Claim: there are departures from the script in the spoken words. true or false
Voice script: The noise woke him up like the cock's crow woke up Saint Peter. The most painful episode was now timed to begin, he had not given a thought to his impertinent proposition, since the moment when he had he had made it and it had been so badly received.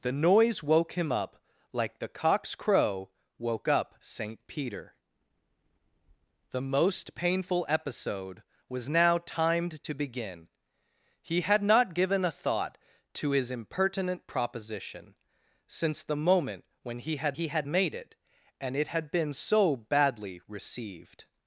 false